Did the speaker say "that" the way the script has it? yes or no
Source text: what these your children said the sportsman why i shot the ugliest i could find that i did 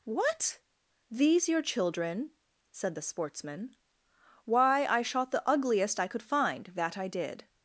yes